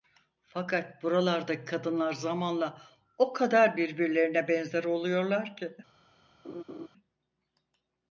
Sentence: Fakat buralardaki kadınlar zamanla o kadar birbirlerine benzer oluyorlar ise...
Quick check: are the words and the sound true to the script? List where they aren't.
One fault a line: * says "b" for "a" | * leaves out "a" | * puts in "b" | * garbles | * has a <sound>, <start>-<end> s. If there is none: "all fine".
* says "ki" for "ise"
* has a laugh, 6.4-6.9 s